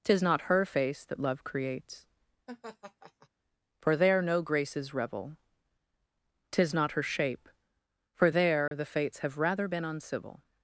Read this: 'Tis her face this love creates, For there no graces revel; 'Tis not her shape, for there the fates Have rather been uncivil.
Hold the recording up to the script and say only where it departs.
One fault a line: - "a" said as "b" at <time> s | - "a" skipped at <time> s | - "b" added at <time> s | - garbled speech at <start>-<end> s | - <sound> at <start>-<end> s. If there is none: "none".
- "not" added at 0.2 s
- "this" said as "that" at 1.1 s
- laugh at 2.5-3.3 s
- dropout at 8.7-8.7 s